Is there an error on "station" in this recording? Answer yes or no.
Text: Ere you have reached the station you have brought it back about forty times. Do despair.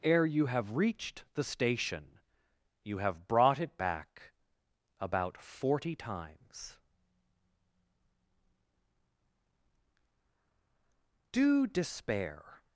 no